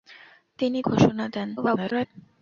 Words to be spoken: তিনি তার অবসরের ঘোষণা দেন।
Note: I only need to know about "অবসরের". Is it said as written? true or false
false